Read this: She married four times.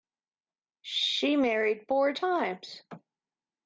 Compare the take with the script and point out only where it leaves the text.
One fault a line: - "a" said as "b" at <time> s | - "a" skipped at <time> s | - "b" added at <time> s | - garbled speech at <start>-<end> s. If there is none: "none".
none